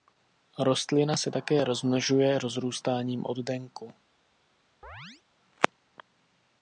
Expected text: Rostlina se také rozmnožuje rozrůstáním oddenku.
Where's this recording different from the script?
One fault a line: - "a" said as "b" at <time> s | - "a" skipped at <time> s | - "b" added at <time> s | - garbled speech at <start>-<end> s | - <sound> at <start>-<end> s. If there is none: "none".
- chirp at 4.8-5.2 s